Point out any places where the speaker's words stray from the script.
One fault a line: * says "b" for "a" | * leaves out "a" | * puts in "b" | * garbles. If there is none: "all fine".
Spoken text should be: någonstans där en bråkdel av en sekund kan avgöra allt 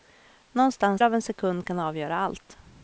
* leaves out "där en bråkdel"